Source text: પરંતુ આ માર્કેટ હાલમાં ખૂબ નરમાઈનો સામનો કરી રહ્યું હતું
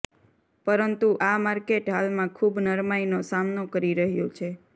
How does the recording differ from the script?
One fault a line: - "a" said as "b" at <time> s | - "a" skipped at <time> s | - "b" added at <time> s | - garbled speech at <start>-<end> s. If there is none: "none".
- "હતું" said as "છે" at 4.4 s